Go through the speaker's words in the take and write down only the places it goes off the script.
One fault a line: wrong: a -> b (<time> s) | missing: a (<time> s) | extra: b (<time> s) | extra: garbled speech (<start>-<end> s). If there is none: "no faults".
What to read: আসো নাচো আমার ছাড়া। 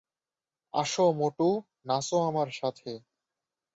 extra: মোটু (1.1 s)
wrong: ছাড়া -> সাথে (2.5 s)